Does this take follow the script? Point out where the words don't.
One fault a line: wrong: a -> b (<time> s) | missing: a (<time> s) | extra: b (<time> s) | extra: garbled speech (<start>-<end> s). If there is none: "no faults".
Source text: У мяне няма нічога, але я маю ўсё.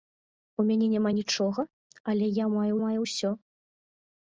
extra: маю (2.8 s)